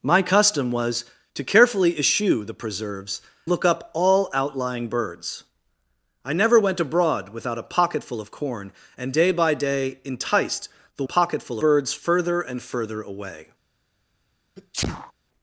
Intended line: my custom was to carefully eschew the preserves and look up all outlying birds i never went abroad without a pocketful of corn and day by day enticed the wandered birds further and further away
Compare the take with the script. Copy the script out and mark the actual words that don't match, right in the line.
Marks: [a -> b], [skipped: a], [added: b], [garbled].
my custom was to carefully eschew the preserves [skipped: and] look up all outlying birds i never went abroad without a pocketful of corn and day by day enticed the [wandered -> pocketful] birds further and further away